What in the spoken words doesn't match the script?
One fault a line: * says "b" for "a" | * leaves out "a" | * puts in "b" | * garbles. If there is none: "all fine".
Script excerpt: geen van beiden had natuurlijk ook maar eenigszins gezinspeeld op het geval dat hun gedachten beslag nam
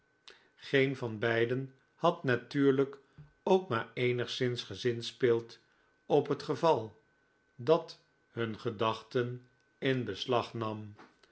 * puts in "in"